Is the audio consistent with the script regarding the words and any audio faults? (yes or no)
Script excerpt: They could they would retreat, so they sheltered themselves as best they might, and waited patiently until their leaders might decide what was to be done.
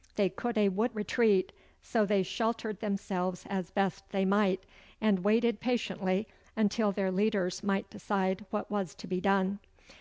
yes